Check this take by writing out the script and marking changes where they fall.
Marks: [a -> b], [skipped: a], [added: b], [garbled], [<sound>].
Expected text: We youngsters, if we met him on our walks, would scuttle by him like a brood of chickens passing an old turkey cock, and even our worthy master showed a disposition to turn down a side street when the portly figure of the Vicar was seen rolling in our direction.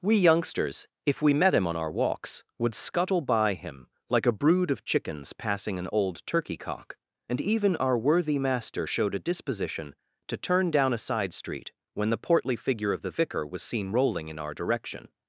We youngsters, if we met him on our walks, would scuttle by him like a brood of chickens passing an old turkey cock, and even our worthy master showed a disposition to turn down a side street when the portly figure of the Vicar was seen rolling in our direction.